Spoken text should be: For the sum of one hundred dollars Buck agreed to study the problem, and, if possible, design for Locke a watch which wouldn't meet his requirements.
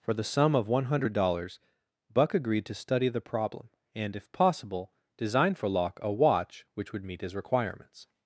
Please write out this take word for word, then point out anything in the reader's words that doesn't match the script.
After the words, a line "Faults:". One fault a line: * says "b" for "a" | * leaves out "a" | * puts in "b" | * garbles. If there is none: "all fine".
For the sum of one hundred dollars Buck agreed to study the problem, and, if possible, design for Locke a watch which would meet his requirements.
Faults:
* says "would" for "wouldn't"